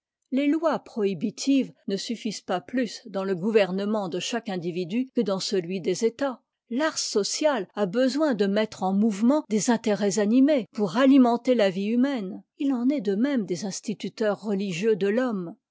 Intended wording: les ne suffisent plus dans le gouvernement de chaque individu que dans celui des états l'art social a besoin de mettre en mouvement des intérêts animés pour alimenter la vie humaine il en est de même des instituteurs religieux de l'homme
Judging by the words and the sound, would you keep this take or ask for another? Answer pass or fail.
fail